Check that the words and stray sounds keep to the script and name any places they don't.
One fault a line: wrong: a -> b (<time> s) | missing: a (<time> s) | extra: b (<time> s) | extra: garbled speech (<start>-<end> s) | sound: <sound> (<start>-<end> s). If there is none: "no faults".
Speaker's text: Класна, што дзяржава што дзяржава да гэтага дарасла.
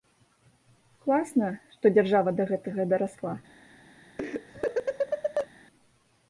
missing: што дзяржава (2.4 s)
sound: laugh (4.2-5.5 s)